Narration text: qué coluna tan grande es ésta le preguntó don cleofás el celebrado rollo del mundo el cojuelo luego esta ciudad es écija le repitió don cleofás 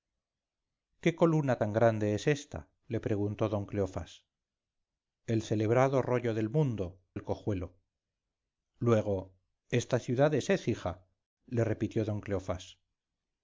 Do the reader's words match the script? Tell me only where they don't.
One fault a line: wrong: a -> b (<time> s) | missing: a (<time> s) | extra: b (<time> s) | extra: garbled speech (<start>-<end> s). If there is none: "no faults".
no faults